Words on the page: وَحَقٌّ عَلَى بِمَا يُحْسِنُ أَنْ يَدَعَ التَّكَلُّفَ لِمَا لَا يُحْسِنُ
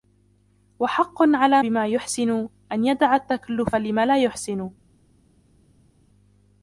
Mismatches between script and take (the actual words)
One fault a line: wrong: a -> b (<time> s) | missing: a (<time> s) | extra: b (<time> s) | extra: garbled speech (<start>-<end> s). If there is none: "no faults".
no faults